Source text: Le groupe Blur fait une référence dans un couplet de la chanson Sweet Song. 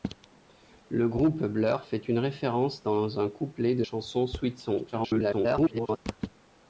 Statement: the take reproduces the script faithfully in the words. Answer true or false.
false